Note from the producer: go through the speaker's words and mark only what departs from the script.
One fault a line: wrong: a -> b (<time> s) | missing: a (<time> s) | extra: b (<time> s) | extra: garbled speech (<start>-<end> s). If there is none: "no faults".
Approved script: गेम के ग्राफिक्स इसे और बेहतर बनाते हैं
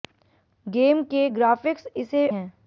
missing: और बेहतर बनाते (2.3 s)